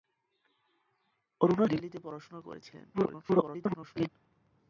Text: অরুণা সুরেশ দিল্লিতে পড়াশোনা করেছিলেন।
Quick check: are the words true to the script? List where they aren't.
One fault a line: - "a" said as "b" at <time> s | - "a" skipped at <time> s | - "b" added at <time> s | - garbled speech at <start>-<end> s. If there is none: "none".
- "সুরেশ" skipped at 1.7 s
- garbled speech at 2.9-4.1 s